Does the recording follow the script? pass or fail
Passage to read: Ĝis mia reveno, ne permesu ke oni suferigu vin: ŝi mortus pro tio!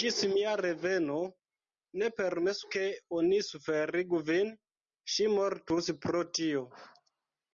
pass